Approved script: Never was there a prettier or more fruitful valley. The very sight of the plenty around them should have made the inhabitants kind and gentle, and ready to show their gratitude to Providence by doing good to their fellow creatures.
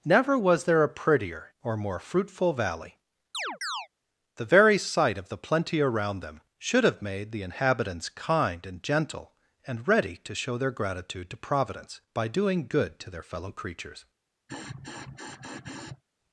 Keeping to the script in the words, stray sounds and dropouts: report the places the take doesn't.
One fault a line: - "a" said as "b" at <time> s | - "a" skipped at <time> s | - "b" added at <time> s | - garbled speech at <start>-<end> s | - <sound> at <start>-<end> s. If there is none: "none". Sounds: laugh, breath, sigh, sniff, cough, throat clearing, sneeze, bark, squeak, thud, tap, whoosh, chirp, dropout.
- chirp at 3.3-3.9 s
- sniff at 14.5-16.0 s